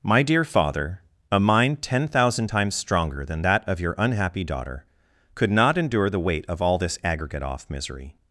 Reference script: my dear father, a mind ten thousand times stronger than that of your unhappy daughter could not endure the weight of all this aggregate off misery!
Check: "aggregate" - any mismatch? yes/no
no